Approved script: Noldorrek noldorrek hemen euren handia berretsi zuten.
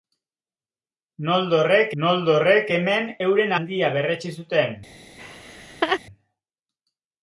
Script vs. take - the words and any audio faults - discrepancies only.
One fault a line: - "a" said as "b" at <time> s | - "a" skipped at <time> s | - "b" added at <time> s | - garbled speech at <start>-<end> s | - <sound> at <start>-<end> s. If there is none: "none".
- laugh at 5.2-6.0 s